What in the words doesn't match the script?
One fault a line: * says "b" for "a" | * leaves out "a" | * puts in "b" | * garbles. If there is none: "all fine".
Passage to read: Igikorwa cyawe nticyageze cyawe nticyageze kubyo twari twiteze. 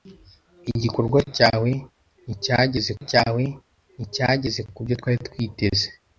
all fine